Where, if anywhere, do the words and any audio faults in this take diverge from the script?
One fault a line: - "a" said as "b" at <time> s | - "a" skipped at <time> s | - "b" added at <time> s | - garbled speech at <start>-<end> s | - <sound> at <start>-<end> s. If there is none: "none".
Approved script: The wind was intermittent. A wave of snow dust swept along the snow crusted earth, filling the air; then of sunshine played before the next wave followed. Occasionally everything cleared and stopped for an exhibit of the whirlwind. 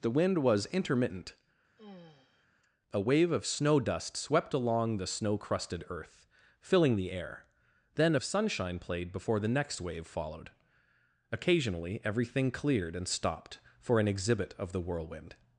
- sigh at 1.8-2.5 s